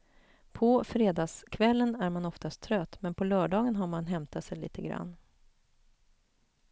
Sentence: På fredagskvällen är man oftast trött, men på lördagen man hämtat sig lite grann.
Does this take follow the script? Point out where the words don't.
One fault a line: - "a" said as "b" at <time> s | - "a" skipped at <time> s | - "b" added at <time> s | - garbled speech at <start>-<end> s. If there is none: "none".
- "har" added at 3.7 s